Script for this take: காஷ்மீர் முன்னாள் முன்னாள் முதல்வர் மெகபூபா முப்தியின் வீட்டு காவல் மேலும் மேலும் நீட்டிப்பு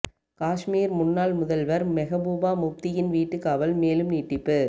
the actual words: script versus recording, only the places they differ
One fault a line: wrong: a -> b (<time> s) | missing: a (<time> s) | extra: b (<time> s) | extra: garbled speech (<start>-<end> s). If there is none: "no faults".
missing: முன்னாள் (1.3 s)
missing: மேலும் (4.1 s)